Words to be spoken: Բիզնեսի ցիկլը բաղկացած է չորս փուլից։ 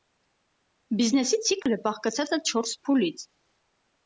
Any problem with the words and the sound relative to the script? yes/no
yes